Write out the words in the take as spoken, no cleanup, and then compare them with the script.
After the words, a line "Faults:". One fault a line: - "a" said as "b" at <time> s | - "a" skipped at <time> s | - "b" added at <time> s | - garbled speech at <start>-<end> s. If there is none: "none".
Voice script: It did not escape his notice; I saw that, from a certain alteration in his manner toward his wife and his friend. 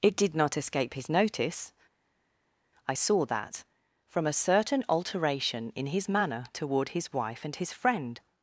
It did not escape his notice; I saw that, from a certain alteration in his manner toward his wife and his friend.
Faults:
none